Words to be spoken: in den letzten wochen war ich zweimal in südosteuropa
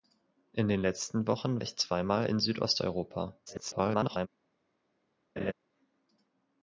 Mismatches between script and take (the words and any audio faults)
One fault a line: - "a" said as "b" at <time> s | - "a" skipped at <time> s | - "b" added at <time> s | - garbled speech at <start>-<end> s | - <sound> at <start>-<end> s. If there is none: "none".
- "war" skipped at 1.6 s
- garbled speech at 3.5-4.3 s
- laugh at 5.4-5.5 s